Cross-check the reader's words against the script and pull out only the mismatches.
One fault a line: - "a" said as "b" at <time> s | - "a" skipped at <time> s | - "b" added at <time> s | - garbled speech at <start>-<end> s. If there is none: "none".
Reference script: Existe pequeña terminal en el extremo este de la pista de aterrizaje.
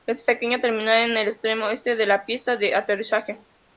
none